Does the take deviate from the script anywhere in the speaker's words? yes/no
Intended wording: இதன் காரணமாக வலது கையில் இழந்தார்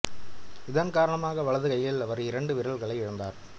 yes